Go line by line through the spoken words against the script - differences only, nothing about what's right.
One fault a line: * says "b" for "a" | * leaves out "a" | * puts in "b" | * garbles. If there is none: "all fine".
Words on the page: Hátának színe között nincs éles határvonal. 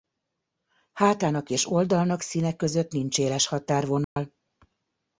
* puts in "és oldalnak"